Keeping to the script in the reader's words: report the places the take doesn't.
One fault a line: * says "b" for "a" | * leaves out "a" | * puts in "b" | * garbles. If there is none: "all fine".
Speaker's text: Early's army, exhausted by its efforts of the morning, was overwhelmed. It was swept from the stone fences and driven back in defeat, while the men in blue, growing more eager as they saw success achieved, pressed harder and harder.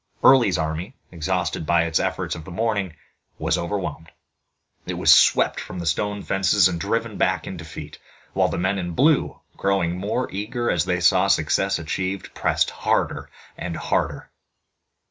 all fine